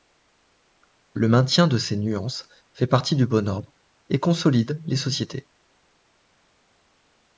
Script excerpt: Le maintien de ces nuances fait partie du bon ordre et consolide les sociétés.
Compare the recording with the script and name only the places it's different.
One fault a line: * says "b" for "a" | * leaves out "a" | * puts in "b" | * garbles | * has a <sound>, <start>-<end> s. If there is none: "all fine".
all fine